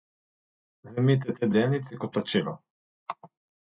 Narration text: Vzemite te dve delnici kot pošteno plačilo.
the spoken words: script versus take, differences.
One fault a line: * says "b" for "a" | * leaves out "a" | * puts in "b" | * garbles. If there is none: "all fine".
* leaves out "dve"
* leaves out "pošteno"